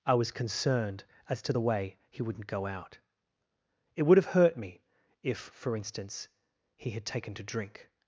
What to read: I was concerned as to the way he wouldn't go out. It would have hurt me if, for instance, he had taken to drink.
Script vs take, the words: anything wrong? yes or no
no